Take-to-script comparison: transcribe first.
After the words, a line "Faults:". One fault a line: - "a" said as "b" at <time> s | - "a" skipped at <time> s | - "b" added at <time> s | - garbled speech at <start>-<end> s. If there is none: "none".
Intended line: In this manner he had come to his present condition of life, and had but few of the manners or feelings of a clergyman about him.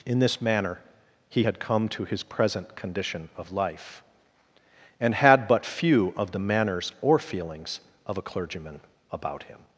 In this manner he had come to his present condition of life, and had but few of the manners or feelings of a clergyman about him.
Faults:
none